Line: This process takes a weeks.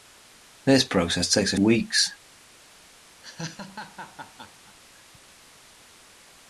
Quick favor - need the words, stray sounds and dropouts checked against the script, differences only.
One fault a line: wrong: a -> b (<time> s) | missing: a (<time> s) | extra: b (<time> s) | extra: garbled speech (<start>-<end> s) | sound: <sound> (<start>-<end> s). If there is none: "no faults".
sound: laugh (3.2-4.8 s)